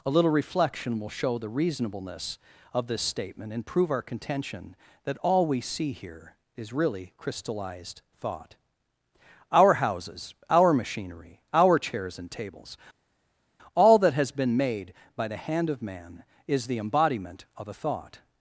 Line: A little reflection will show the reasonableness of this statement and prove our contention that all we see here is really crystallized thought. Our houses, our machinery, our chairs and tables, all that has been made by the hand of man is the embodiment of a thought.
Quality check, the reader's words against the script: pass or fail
pass